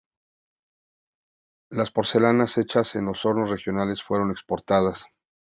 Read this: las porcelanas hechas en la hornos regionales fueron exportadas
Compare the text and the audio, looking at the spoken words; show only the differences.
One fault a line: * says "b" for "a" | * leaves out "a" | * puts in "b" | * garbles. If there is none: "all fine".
* says "los" for "la"